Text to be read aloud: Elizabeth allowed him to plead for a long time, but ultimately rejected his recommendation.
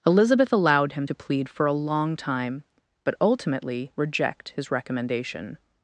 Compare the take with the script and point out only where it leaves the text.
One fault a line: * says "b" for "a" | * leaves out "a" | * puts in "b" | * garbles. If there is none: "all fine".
* says "reject" for "rejected"